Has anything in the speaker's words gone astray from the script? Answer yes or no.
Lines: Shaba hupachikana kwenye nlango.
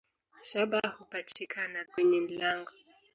no